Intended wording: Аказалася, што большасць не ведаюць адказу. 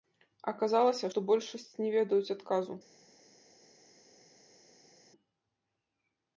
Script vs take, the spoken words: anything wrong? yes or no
no